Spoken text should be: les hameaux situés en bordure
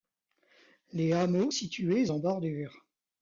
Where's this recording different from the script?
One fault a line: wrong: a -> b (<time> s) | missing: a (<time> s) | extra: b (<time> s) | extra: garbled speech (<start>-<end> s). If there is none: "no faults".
no faults